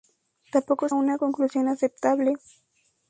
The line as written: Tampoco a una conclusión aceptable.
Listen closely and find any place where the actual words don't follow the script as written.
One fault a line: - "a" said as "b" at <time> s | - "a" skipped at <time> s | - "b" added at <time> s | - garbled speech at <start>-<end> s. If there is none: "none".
none